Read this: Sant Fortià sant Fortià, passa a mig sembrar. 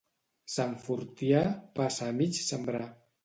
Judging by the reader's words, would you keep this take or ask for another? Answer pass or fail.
fail